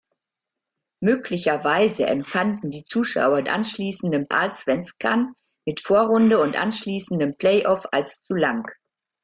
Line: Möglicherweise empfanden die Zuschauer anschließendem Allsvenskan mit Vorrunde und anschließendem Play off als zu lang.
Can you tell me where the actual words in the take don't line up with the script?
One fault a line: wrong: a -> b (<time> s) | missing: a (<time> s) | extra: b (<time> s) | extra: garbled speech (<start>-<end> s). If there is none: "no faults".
no faults